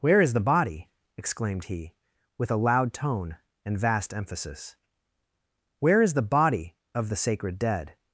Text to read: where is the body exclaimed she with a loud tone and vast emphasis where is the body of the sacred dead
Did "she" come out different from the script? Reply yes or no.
yes